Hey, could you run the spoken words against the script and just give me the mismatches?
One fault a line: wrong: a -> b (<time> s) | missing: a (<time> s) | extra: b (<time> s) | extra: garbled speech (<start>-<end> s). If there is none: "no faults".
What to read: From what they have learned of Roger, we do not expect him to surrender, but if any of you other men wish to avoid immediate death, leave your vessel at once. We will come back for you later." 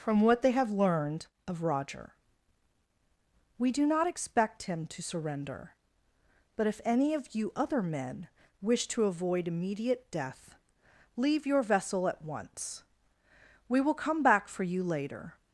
no faults